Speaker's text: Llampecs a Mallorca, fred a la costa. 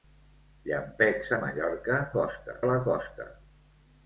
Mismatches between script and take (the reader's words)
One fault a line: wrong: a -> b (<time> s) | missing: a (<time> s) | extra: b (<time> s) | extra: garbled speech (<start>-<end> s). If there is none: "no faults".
wrong: fred -> costa (2.1 s)